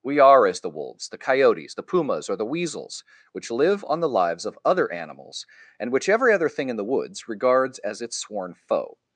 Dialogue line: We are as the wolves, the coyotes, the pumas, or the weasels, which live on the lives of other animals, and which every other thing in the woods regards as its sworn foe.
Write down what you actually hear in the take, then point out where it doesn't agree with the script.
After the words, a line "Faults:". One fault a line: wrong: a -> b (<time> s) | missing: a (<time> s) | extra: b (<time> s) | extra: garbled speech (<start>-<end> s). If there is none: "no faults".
We are as the wolves, the coyotes, the pumas, or the weasels, which live on the lives of other animals, and which every other thing in the woods regards as its sworn foe.
Faults:
no faults